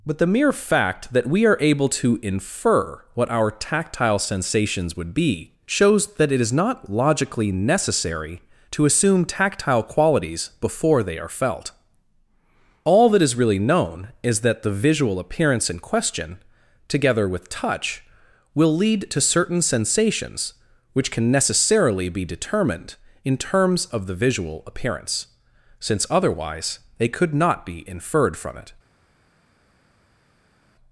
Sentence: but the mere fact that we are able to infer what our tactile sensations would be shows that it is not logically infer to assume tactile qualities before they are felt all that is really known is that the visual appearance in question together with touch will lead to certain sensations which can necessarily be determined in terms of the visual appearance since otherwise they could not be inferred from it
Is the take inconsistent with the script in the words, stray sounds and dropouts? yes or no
yes